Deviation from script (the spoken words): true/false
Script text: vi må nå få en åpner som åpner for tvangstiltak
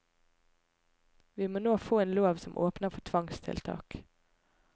true